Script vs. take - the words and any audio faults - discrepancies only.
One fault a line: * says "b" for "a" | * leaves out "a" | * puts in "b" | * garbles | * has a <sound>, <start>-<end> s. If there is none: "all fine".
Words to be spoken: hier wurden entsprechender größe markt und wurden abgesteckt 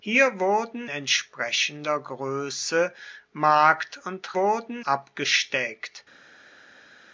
all fine